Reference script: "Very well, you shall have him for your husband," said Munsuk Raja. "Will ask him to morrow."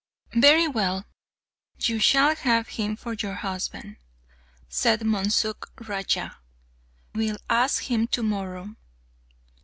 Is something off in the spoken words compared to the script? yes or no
no